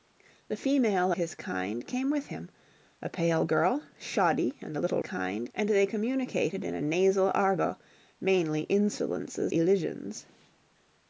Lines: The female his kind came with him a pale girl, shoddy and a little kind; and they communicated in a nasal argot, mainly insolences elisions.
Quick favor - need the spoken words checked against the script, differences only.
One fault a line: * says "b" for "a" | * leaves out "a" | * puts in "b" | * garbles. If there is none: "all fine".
all fine